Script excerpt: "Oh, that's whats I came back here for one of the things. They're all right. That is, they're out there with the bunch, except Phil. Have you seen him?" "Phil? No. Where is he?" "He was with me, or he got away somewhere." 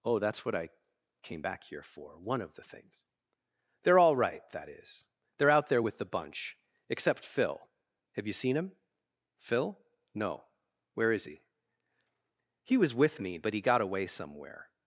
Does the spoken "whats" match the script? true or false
false